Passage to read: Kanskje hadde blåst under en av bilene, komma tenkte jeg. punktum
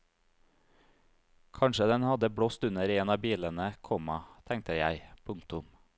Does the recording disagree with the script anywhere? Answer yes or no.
yes